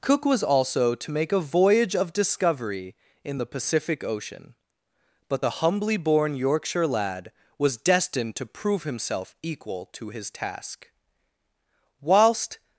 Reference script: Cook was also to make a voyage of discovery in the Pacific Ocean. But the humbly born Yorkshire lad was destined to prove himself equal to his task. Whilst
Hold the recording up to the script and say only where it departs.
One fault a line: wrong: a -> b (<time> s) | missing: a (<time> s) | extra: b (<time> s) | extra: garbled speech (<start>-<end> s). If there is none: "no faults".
no faults